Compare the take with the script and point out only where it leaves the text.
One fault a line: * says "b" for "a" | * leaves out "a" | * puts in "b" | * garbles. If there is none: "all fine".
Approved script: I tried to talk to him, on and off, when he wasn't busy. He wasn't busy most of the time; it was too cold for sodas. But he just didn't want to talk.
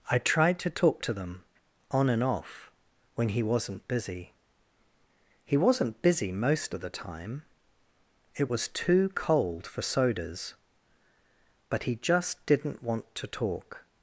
* says "them" for "him"